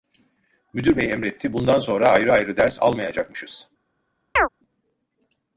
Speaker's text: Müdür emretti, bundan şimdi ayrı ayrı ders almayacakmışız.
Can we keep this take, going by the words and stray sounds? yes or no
no